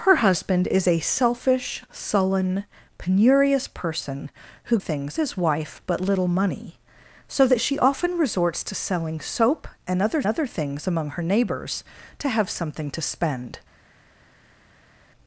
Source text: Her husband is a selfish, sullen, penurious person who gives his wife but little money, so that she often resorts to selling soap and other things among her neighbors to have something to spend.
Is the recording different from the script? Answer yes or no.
yes